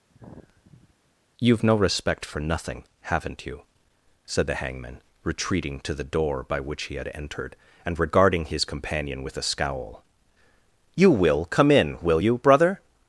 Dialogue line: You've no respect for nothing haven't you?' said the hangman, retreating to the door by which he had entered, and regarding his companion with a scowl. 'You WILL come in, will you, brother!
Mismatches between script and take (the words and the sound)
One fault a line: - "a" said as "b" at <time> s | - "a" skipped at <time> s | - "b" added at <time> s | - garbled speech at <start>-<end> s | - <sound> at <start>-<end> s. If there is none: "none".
- sigh at 0.1-0.9 s